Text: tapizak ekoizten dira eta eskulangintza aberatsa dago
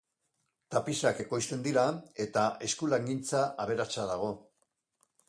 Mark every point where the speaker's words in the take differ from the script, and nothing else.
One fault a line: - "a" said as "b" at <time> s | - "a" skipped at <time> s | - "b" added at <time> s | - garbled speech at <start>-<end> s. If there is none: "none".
none